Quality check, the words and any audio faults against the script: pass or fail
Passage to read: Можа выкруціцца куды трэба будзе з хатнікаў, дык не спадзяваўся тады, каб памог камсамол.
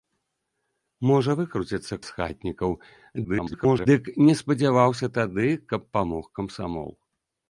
fail